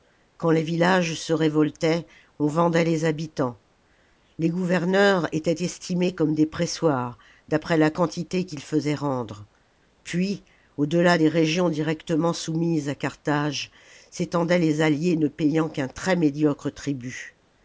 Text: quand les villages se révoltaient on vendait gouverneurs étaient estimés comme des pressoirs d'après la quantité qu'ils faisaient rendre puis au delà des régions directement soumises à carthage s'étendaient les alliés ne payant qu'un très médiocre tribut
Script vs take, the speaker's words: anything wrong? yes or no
yes